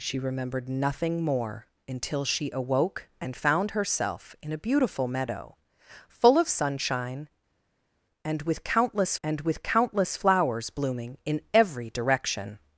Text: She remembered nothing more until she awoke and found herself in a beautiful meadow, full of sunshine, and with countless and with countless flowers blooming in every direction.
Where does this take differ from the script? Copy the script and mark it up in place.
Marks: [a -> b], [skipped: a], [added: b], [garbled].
She remembered nothing more until she awoke and found herself in a beautiful meadow, full of sunshine, and with countless and with countless flowers blooming in every direction.